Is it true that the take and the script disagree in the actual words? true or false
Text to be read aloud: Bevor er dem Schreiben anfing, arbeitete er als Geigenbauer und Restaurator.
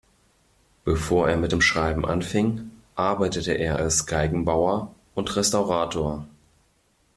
true